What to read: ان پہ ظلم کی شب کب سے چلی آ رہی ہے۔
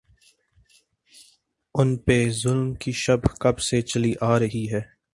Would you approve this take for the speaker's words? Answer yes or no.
yes